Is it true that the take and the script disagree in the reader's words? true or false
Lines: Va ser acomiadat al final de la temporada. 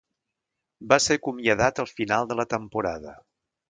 false